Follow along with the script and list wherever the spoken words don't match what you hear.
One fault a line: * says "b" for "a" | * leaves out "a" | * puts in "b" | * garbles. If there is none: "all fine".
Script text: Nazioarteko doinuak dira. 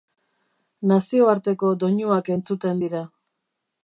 * puts in "entzuten"